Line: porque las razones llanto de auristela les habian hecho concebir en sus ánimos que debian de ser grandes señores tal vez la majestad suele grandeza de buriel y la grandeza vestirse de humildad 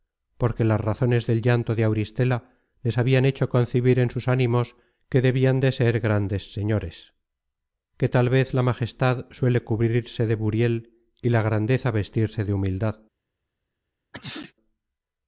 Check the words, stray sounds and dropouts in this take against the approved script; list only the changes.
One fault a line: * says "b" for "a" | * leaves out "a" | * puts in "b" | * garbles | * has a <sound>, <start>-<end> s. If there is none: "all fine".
* puts in "del"
* puts in "que"
* says "cubrirse" for "grandeza"
* has a sneeze, 14.1-14.5 s